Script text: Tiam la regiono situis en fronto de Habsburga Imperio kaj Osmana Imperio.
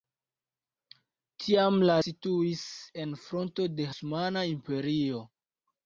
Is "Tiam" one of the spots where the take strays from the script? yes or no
no